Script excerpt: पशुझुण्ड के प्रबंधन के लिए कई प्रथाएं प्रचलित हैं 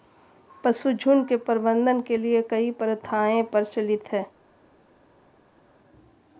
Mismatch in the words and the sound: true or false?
false